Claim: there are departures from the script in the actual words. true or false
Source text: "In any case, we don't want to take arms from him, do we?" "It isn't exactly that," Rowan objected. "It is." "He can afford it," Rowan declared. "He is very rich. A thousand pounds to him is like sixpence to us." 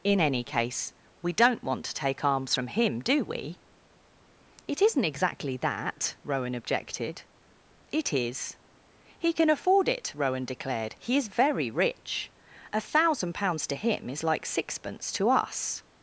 false